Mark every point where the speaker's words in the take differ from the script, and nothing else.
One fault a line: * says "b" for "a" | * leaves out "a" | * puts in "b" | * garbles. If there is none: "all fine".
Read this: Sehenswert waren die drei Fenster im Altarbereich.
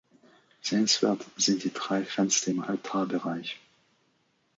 * says "sind" for "waren"